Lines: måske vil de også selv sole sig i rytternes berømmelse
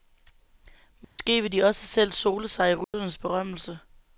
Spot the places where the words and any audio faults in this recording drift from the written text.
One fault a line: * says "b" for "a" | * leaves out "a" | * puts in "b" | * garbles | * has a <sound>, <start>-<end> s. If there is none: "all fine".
* has a dropout, 1.0-1.2 s
* has a dropout, 2.8-2.9 s